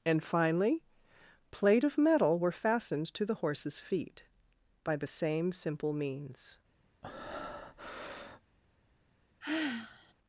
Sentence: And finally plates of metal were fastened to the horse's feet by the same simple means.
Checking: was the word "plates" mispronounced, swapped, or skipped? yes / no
yes